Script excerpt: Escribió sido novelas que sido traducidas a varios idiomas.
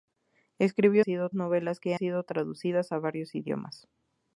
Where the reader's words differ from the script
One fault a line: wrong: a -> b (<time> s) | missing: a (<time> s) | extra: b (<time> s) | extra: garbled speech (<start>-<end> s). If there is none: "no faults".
no faults